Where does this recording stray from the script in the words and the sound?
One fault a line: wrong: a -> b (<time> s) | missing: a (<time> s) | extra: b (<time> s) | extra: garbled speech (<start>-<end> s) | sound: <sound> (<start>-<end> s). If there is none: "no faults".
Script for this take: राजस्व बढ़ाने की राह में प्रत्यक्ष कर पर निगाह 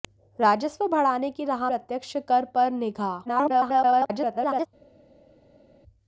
missing: में (1.7 s)
extra: garbled speech (3.3-4.7 s)